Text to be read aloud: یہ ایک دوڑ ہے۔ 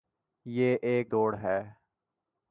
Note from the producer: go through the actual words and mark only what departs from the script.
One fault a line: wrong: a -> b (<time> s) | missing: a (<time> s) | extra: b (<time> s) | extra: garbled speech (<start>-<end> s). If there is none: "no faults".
no faults